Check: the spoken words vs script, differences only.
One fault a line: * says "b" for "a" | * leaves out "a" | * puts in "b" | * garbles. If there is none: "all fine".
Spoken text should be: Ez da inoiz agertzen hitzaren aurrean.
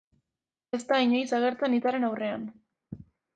all fine